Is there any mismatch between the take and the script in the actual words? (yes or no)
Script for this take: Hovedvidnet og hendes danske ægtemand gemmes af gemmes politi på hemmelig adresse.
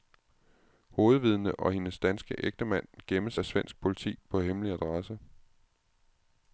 yes